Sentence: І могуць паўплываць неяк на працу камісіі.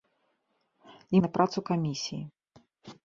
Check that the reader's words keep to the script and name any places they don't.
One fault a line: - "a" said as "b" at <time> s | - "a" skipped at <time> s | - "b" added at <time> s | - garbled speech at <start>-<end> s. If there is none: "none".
- "могуць паўплываць неяк" skipped at 1.2 s